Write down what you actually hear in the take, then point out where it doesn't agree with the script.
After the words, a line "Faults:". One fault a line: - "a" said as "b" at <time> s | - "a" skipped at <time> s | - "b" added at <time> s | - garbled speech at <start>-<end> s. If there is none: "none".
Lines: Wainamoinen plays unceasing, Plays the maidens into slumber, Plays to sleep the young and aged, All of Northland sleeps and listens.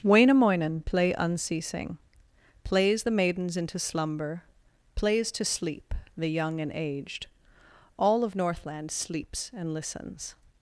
Wainamoinen play unceasing, Plays the maidens into slumber, Plays to sleep the young and aged, All of Northland sleeps and listens.
Faults:
- "plays" said as "play" at 0.8 s